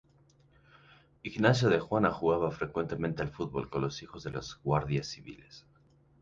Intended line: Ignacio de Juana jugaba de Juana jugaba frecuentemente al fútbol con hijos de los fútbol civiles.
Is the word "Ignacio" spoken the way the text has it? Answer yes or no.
yes